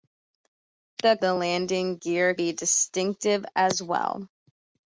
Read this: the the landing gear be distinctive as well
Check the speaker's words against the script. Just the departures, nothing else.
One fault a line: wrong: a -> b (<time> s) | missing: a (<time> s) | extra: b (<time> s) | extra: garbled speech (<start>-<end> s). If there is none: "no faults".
no faults